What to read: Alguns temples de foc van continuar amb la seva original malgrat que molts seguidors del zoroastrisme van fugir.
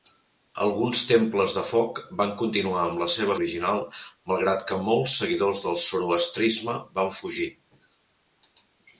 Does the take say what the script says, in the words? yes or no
yes